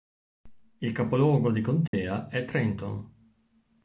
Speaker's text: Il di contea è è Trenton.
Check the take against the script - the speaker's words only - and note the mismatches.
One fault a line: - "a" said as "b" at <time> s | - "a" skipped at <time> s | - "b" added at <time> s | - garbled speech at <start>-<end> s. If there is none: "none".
- "capoluogo" added at 0.9 s
- "è" skipped at 2.4 s